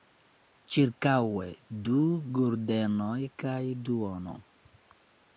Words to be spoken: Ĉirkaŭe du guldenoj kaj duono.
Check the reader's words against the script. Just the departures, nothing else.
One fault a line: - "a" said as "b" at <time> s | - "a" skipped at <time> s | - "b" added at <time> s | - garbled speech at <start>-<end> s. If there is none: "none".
none